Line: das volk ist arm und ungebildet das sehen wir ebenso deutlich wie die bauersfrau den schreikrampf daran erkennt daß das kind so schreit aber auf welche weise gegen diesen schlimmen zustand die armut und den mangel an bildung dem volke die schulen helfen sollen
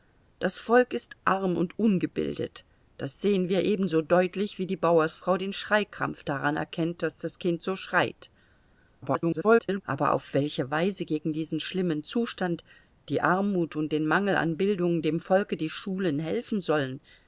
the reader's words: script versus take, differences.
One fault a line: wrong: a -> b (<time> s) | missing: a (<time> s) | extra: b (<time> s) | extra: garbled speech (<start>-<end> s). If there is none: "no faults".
extra: garbled speech (9.0-9.8 s)